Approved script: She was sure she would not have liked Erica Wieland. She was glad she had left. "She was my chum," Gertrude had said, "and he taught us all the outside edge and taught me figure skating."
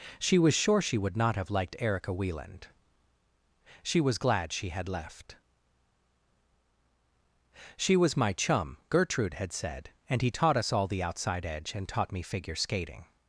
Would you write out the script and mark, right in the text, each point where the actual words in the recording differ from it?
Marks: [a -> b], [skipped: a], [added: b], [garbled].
She was sure she would not have liked Erica Wieland. She was glad she had left. "She was my chum," Gertrude had said, "and he taught us all the outside edge and taught me figure skating."